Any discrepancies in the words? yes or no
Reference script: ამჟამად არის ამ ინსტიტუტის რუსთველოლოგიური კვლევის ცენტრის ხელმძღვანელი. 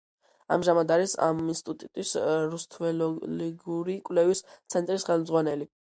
no